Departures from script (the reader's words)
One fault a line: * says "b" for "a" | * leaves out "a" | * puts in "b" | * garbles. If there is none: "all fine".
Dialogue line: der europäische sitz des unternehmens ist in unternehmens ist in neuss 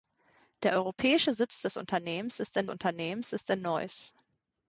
all fine